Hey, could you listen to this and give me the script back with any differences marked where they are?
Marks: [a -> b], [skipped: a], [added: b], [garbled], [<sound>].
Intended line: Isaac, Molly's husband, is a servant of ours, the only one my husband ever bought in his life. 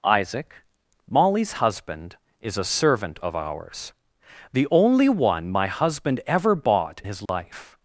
Isaac, Molly's husband, is a servant of ours, the only one my husband ever bought [skipped: in] his life. [dropout]